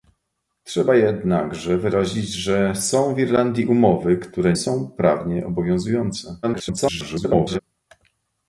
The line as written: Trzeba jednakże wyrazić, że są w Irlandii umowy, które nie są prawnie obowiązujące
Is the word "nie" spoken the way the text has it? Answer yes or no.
no